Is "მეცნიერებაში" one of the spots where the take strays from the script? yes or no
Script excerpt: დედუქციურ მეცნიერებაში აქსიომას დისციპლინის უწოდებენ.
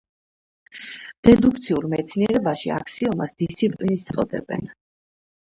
no